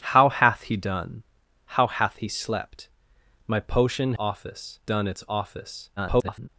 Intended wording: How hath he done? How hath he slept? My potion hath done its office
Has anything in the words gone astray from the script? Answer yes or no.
yes